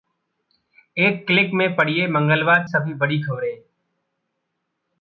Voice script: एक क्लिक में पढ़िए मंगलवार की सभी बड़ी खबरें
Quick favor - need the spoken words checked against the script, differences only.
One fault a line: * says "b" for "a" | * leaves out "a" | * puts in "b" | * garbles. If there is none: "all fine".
* leaves out "की"